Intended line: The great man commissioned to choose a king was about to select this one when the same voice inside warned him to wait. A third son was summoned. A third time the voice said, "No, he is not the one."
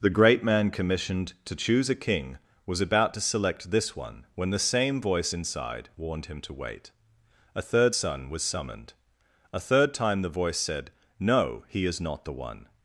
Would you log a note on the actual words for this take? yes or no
no